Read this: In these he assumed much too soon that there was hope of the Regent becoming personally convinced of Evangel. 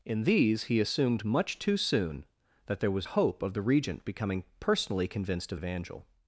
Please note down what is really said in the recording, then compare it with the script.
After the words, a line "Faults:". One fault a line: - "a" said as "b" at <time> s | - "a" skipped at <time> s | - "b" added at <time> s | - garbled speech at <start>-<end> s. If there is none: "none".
In these he assumed much too soon that there was hope of the Regent becoming personally convinced of Evangel.
Faults:
none